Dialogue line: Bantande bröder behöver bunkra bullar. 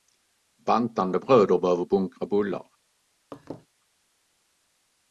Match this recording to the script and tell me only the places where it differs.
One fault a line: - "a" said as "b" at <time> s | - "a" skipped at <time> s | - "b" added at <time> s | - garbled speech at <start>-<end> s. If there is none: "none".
none